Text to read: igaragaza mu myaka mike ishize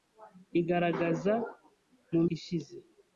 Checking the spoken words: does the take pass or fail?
fail